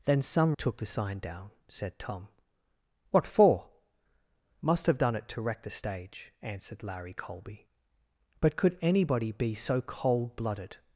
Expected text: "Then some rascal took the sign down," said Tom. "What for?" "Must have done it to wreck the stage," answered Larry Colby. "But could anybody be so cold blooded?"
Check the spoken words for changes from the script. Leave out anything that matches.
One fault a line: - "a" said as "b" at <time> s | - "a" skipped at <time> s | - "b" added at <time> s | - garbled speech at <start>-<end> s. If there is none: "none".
- "rascal" skipped at 0.6 s